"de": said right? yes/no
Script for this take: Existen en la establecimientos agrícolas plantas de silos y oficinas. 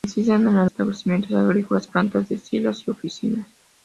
yes